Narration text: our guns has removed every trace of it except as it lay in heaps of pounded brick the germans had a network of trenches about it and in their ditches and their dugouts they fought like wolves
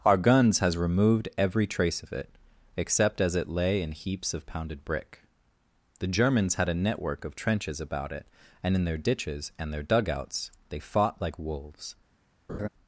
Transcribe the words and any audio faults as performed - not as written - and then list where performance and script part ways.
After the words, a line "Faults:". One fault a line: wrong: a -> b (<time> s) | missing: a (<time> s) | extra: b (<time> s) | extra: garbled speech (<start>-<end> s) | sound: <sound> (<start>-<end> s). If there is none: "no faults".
our guns has removed every trace of it except as it lay in heaps of pounded brick the germans had a network of trenches about it and in their ditches and their dugouts they fought like wolves
Faults:
sound: laugh (12.5-12.7 s)